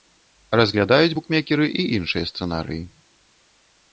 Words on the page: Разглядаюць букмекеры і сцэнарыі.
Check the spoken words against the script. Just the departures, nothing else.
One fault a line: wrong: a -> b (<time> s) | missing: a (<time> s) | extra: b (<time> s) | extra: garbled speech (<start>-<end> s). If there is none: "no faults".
extra: іншыя (2.0 s)